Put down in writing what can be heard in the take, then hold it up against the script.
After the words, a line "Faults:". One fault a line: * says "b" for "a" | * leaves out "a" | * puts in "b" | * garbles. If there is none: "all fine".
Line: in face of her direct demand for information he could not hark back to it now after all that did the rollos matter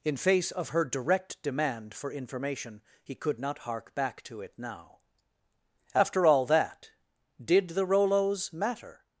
in face of her direct demand for information he could not hark back to it now after all that did the rollos matter
Faults:
all fine